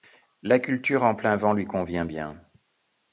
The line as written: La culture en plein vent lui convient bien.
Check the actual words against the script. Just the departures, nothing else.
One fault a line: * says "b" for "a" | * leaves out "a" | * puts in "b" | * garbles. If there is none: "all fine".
all fine